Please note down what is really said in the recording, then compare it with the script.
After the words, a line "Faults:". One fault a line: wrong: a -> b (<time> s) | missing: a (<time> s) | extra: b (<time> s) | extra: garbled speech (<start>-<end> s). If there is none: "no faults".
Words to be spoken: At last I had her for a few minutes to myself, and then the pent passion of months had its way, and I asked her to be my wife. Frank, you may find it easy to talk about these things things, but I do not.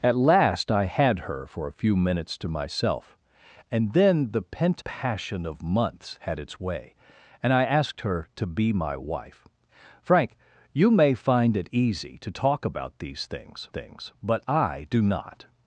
At last I had her for a few minutes to myself, and then the pent passion of months had its way, and I asked her to be my wife. Frank, you may find it easy to talk about these things things, but I do not.
Faults:
no faults